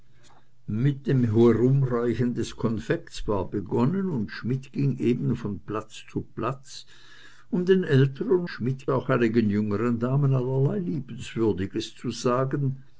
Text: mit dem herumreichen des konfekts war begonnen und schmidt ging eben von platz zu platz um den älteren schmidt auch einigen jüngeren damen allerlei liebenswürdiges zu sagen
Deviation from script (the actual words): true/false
false